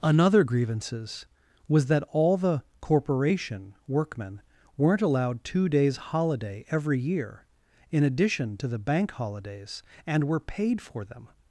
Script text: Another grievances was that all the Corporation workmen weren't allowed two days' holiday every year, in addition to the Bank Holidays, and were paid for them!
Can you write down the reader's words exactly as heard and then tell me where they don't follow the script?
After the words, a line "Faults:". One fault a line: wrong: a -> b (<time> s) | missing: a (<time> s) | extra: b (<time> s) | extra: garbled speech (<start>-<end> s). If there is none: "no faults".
Another grievances was that all the Corporation workmen weren't allowed two days' holiday every year, in addition to the Bank Holidays, and were paid for them!
Faults:
no faults